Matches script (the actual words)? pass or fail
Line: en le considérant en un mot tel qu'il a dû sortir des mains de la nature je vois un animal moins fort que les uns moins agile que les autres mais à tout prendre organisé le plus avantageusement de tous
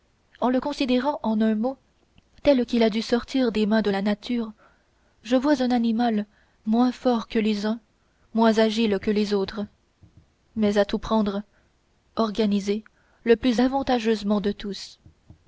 pass